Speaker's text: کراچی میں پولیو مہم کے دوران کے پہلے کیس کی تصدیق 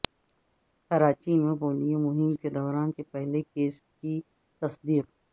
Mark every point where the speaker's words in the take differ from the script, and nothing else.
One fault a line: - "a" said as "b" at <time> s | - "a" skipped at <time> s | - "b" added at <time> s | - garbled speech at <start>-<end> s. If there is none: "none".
none